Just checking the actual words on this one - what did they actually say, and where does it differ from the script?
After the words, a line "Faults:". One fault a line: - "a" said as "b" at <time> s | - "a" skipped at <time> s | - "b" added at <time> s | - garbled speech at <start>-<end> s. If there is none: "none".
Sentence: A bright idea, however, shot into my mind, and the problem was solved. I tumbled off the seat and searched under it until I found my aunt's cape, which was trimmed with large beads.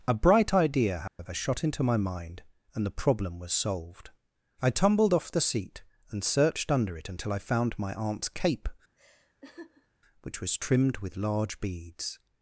A bright idea, however, shot into my mind, and the problem was solved. I tumbled off the seat and searched under it until I found my aunt's cape, which was trimmed with large beads.
Faults:
none